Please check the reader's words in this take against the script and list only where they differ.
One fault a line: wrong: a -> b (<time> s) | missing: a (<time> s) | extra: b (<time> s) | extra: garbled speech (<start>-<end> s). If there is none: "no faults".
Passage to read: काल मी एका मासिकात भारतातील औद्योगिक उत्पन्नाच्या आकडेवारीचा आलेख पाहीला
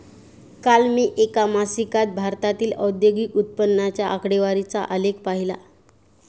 no faults